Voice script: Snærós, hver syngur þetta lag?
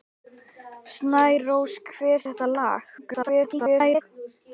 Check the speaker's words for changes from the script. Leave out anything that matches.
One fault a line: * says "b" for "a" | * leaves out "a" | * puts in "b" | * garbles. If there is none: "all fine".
* leaves out "syngur"
* garbles